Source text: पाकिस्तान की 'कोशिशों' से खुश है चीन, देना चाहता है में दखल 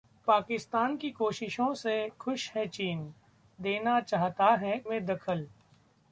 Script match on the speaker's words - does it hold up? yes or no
yes